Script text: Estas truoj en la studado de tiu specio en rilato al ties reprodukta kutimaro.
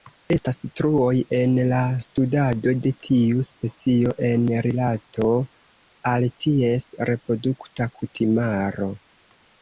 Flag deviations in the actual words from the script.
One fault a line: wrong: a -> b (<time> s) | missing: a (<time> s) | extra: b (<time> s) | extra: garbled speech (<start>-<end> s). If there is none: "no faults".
no faults